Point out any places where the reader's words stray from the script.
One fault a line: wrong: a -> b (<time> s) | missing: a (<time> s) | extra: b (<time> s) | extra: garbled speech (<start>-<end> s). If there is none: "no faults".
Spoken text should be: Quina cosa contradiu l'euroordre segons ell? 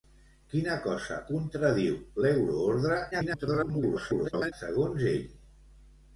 extra: garbled speech (3.1-4.5 s)